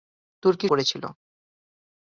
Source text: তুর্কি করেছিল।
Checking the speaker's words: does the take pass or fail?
pass